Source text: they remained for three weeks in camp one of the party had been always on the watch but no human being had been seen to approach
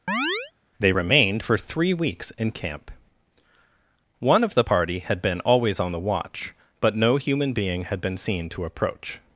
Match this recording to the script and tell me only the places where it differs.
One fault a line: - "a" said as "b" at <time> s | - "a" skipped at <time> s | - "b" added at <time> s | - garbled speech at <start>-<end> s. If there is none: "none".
none